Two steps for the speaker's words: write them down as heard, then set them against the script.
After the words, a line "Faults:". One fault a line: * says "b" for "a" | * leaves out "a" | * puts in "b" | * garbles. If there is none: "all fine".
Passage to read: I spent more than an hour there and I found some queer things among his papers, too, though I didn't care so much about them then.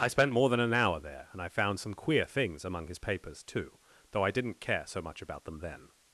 I spent more than an hour there and I found some queer things among his papers, too, though I didn't care so much about them then.
Faults:
all fine